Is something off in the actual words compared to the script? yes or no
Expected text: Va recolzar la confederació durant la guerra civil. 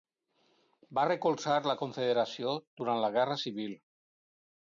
no